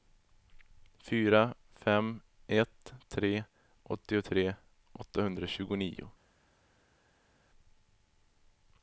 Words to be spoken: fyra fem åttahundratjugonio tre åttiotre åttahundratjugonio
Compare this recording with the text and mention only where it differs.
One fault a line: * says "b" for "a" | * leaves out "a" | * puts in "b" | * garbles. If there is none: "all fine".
* says "ett" for "åttahundratjugonio"